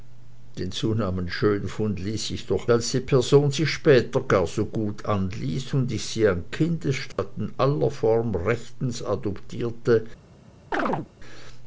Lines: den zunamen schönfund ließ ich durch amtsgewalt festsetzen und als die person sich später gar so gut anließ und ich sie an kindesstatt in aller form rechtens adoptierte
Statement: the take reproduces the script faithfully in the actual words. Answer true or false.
false